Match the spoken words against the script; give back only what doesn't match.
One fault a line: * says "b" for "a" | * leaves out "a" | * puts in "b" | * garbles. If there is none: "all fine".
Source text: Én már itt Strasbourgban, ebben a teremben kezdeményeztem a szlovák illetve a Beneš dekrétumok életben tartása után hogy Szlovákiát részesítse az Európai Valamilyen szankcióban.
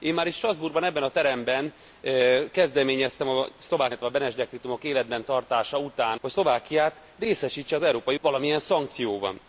all fine